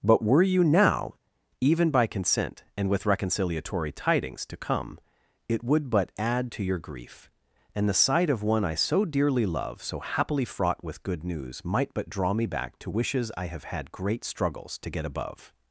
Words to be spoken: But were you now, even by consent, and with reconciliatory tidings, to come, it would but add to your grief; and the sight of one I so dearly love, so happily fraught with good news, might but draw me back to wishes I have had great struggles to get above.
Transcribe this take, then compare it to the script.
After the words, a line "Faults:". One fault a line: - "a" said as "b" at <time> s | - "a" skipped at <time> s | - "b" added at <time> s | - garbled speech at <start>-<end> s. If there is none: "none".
But were you now, even by consent, and with reconciliatory tidings, to come, it would but add to your grief; and the sight of one I so dearly love, so happily fraught with good news, might but draw me back to wishes I have had great struggles to get above.
Faults:
none